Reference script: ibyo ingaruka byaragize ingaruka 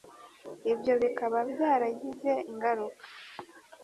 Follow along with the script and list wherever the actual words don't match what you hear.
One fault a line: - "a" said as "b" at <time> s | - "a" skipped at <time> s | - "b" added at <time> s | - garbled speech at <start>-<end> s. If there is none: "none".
- "ingaruka" said as "bikaba" at 1.0 s